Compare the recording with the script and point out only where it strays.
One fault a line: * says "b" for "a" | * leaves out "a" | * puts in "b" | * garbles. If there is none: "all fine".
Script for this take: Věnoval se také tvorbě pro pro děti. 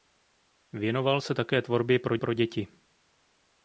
all fine